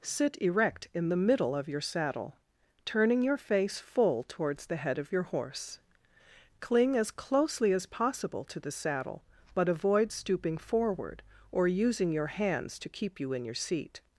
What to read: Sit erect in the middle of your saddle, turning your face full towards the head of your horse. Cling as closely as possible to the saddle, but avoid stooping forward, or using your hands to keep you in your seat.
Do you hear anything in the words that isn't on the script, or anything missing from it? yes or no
no